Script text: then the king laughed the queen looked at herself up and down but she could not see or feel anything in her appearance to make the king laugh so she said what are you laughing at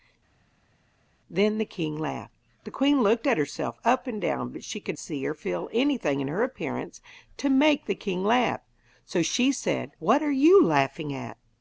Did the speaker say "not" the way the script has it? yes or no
no